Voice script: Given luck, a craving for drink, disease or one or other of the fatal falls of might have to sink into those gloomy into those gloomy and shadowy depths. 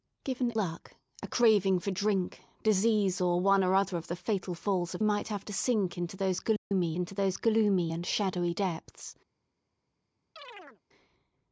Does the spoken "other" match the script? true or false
true